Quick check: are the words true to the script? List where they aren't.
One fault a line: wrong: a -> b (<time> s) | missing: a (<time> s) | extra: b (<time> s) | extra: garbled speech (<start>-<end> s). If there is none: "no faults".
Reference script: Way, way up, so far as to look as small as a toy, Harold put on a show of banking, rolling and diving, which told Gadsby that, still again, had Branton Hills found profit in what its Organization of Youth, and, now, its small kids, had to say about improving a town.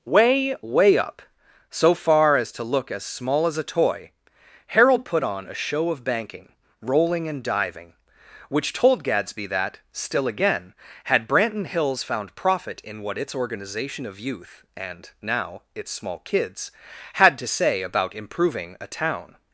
no faults